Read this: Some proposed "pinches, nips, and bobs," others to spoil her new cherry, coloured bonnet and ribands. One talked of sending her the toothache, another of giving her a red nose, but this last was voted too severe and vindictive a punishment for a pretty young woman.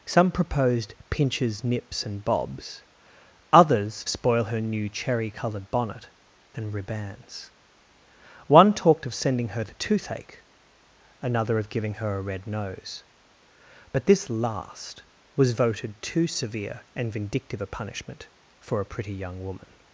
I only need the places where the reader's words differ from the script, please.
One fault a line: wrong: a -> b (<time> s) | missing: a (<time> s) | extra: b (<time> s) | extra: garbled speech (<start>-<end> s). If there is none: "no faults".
missing: to (4.0 s)